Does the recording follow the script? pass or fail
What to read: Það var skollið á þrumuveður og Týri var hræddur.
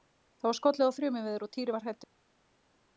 pass